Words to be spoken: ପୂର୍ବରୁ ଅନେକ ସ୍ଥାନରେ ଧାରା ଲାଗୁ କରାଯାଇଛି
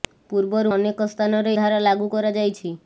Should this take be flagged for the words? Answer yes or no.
no